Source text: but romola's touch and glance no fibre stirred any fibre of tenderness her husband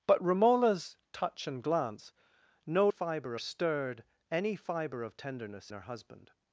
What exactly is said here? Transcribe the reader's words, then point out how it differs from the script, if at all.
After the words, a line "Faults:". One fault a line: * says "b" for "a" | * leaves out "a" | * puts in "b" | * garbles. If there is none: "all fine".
but romola's touch and glance no fibre stirred any fibre of tenderness her husband
Faults:
all fine